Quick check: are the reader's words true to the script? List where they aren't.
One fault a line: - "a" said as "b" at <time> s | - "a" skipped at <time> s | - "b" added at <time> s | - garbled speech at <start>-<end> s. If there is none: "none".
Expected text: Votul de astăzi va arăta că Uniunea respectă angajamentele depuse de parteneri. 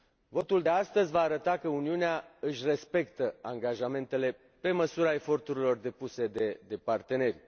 - "își" added at 2.4 s
- "pe măsura eforturilor" added at 4.6 s